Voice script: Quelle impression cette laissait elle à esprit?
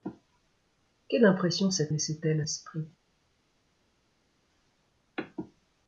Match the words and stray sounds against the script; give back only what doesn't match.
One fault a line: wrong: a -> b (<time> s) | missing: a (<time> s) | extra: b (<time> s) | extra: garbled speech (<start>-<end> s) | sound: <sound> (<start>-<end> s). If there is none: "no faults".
no faults